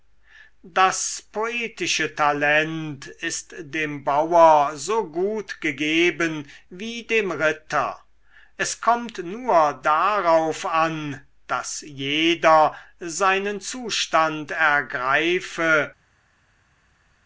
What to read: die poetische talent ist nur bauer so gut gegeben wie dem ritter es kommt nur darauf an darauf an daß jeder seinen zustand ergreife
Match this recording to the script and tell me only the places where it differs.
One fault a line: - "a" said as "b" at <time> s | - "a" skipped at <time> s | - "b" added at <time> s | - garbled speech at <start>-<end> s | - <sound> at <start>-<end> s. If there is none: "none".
- "die" said as "das" at 0.6 s
- "nur" said as "dem" at 3.6 s
- "darauf an" skipped at 11.2 s